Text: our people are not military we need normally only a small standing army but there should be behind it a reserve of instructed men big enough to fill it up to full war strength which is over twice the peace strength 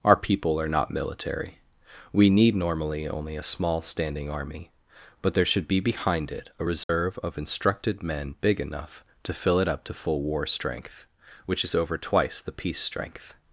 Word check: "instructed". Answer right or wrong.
right